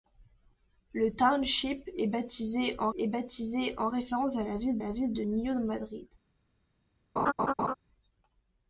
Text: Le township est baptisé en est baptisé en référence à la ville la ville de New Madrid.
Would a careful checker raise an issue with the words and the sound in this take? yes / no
yes